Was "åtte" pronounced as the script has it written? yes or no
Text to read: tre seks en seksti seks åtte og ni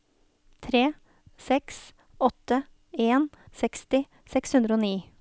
no